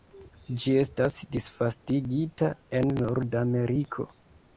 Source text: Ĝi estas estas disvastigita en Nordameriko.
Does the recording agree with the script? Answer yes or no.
no